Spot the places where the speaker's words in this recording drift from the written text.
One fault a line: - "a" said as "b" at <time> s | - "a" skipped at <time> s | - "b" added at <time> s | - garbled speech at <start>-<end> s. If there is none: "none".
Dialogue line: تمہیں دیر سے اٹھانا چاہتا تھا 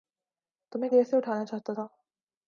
none